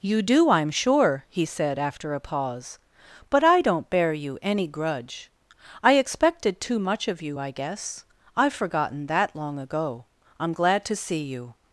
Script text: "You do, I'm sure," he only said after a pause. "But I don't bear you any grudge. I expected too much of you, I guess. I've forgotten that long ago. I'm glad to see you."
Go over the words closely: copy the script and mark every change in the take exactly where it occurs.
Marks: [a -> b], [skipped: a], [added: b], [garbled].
"You do, I'm sure," he [skipped: only] said after a pause. "But I don't bear you any grudge. I expected too much of you, I guess. I've forgotten that long ago. I'm glad to see you."